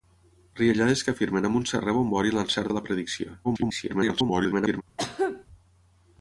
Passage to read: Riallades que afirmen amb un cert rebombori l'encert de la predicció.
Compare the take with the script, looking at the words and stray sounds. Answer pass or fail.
fail